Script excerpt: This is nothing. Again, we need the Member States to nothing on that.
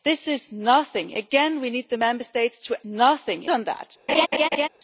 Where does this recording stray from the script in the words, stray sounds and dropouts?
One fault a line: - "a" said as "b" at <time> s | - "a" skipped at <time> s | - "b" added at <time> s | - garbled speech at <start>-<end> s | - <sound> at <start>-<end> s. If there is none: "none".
- laugh at 4.1-4.7 s